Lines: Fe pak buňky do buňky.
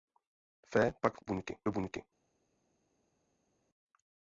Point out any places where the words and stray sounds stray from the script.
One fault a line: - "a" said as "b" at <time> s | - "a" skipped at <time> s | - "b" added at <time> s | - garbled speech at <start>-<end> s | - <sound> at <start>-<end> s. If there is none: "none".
none